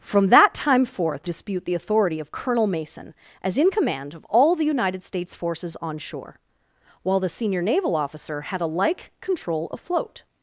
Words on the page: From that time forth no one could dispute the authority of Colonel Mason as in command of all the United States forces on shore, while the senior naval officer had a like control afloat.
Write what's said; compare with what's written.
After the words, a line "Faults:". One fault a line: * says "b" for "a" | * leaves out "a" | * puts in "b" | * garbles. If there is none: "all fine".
From that time forth dispute the authority of Colonel Mason as in command of all the United States forces on shore, while the senior naval officer had a like control afloat.
Faults:
* leaves out "no one could"